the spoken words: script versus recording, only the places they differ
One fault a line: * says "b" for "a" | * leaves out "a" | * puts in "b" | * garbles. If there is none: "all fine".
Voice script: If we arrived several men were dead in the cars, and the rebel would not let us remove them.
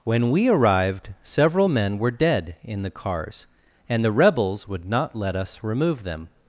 * says "When" for "If"
* says "rebels" for "rebel"